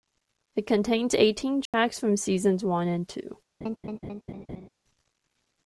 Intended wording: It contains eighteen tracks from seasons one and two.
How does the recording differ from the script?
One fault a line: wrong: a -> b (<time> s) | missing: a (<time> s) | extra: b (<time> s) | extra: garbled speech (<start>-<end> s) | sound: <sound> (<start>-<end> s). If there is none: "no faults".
sound: dropout (1.7-1.7 s)
sound: laugh (3.6-4.7 s)